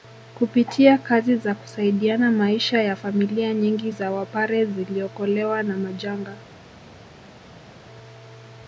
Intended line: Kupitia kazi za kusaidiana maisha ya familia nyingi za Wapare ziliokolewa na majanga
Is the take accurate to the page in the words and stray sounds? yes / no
yes